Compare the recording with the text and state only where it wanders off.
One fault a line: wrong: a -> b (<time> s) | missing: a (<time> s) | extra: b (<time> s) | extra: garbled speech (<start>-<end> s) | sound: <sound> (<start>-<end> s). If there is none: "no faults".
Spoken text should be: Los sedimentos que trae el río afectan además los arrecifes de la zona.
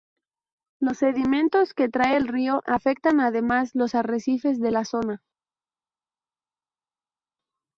no faults